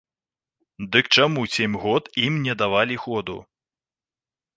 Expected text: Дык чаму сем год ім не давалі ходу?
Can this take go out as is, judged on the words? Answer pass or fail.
pass